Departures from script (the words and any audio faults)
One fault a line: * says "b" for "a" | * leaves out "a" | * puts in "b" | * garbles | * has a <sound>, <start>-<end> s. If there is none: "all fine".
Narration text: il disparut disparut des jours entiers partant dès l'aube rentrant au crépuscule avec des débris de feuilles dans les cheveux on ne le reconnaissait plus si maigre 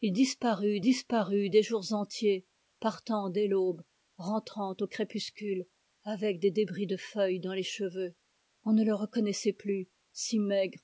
all fine